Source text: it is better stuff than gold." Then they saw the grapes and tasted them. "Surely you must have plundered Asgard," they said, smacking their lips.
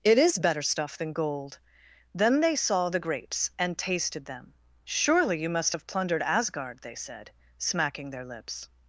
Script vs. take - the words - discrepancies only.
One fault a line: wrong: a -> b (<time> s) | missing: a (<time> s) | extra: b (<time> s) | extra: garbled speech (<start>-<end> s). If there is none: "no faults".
no faults